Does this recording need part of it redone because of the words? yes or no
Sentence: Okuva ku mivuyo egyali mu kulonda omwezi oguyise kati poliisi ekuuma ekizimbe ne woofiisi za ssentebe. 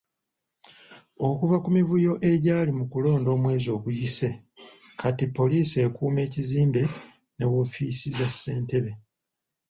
no